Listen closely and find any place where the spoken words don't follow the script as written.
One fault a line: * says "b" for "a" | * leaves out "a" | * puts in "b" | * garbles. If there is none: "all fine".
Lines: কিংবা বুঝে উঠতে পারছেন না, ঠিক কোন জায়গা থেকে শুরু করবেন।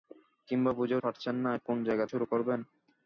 * leaves out "উঠতে"
* leaves out "ঠিক"
* leaves out "থেকে"